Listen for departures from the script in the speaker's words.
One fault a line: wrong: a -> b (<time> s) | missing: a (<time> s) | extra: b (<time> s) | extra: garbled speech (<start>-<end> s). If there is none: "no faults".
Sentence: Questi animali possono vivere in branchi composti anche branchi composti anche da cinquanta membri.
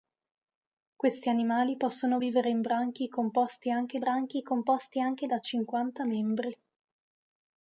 no faults